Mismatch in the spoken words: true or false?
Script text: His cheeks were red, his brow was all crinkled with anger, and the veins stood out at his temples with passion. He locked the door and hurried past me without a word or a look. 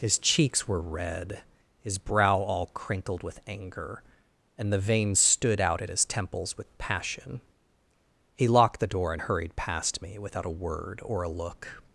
true